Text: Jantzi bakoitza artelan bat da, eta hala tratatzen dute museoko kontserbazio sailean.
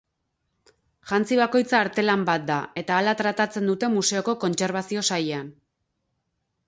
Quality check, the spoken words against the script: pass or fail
pass